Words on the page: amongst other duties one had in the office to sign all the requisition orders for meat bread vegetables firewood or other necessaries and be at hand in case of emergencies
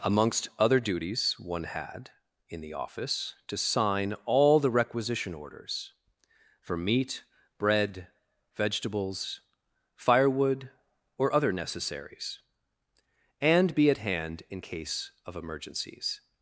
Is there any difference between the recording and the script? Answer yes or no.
no